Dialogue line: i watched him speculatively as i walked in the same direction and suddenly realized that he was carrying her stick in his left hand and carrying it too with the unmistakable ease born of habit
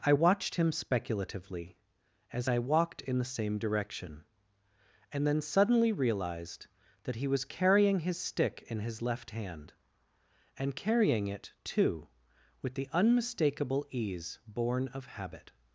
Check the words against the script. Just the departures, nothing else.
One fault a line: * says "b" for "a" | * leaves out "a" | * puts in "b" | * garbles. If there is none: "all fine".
* puts in "then"
* says "his" for "her"